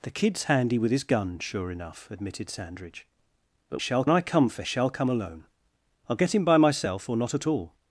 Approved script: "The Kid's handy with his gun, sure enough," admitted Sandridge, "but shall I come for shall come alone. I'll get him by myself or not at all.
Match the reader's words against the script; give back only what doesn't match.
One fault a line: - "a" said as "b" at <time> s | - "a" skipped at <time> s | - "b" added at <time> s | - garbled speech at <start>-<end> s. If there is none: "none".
none